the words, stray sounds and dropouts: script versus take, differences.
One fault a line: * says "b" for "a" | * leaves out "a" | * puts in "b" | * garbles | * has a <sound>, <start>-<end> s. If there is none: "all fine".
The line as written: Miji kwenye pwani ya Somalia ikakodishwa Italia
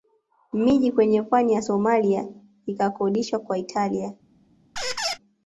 * puts in "kwa"
* has a squeak, 4.8-5.2 s